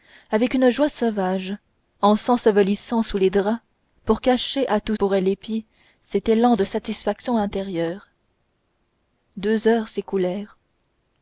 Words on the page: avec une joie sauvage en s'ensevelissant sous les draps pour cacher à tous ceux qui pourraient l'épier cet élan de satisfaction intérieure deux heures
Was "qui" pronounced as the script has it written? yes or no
no